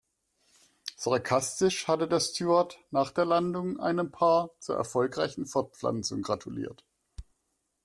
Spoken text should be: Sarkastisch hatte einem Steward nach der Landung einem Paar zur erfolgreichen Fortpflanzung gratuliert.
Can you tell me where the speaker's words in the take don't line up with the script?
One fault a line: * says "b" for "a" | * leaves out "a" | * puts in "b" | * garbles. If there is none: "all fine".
* says "der" for "einem"